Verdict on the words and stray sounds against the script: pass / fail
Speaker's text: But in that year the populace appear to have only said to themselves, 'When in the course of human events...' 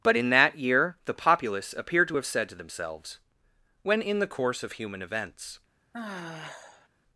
fail